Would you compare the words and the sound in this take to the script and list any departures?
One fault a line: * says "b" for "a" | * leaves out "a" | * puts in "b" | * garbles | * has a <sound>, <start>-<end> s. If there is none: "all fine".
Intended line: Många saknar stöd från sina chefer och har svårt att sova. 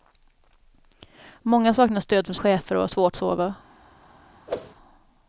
* leaves out "sina"
* leaves out "att"
* has a whoosh, 4.5-4.7 s